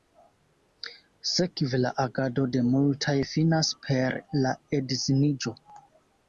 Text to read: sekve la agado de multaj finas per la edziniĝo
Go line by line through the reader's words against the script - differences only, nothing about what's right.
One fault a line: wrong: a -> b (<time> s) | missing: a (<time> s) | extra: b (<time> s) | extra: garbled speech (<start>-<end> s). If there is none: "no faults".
no faults